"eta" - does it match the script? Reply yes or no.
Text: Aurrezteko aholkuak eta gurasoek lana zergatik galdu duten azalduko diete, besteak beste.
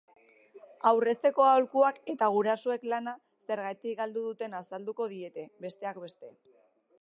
yes